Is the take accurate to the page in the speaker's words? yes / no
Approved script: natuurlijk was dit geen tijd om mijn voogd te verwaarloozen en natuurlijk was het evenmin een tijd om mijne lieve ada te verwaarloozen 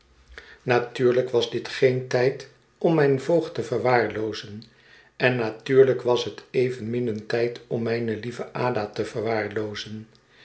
yes